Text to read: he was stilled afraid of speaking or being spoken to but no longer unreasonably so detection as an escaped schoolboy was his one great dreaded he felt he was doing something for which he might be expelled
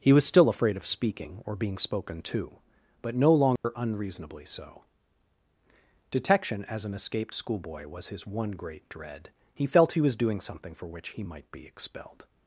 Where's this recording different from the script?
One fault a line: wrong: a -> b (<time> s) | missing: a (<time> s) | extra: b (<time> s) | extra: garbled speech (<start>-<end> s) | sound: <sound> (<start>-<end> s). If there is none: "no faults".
wrong: stilled -> still (0.2 s)
sound: dropout (3.6-3.6 s)
wrong: dreaded -> dread (8.9 s)